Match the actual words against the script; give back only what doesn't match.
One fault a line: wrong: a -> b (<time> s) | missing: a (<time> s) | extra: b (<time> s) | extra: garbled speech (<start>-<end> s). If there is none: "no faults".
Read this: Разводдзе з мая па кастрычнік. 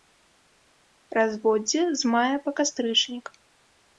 no faults